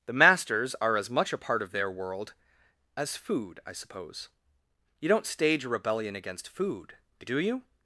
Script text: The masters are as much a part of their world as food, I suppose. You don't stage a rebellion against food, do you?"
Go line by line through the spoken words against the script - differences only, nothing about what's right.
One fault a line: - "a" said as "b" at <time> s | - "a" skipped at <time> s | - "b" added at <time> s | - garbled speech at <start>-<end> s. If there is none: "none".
none